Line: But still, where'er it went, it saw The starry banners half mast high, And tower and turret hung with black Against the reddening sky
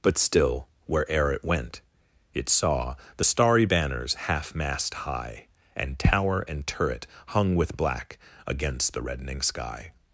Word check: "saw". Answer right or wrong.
right